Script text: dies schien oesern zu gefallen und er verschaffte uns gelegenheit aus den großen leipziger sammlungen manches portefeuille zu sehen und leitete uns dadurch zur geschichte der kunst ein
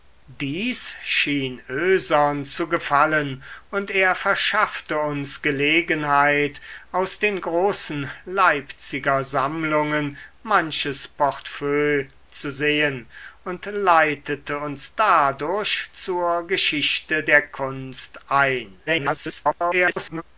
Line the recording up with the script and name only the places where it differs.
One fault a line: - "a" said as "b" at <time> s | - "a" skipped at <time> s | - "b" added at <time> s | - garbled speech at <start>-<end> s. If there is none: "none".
- garbled speech at 18.9-20.2 s